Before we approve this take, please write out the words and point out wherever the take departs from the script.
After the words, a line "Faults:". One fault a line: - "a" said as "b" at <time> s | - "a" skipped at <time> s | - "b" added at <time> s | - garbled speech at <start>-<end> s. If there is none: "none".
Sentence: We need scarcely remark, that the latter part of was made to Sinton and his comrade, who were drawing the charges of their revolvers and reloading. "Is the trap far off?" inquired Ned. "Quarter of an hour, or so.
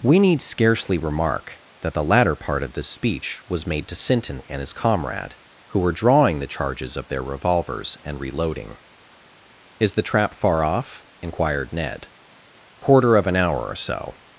We need scarcely remark, that the latter part of this speech was made to Sinton and his comrade, who were drawing the charges of their revolvers and reloading. "Is the trap far off?" inquired Ned. "Quarter of an hour, or so.
Faults:
- "this speech" added at 2.7 s